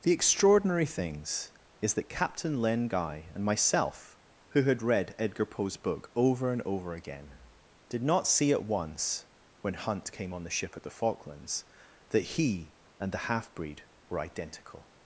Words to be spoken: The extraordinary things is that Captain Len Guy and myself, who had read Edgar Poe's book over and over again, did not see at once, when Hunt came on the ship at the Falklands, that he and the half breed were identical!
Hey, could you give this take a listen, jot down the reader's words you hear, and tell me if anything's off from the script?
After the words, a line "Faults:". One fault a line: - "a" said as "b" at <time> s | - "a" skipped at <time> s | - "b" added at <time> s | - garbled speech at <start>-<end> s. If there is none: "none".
The extraordinary things is that Captain Len Guy and myself, who had read Edgar Poe's book over and over again, did not see at once, when Hunt came on the ship at the Falklands, that he and the half breed were identical!
Faults:
none